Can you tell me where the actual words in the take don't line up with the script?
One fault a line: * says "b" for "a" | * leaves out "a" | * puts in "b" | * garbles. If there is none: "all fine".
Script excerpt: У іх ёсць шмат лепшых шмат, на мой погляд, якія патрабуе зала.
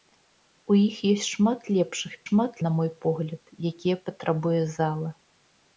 all fine